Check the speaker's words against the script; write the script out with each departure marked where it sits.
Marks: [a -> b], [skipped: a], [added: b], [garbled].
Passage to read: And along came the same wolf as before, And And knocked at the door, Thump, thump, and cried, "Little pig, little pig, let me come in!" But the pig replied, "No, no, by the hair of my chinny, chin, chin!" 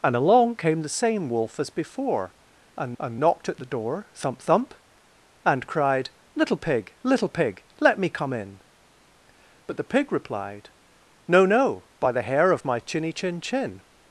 And along came the same wolf as before, And And knocked at the door, Thump, thump, and cried, "Little pig, little pig, let me come in!" But the pig replied, "No, no, by the hair of my chinny, chin, chin!"